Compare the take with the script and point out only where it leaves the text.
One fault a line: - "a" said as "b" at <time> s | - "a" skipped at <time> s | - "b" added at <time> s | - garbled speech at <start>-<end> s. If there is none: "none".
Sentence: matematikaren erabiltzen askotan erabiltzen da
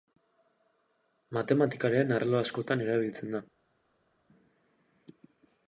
- "erabiltzen" said as "arlo" at 2.2 s